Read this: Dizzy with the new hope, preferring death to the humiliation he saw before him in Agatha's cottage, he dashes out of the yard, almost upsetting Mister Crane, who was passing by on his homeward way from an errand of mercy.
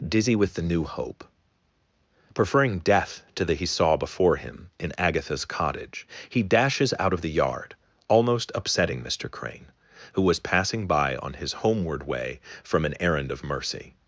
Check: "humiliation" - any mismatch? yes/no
yes